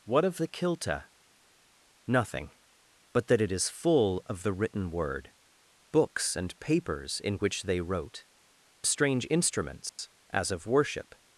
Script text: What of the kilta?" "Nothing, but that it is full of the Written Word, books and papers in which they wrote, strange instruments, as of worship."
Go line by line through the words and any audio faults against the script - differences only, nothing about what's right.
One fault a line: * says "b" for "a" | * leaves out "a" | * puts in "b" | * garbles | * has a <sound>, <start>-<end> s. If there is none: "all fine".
* has a dropout, 9.9-10.0 s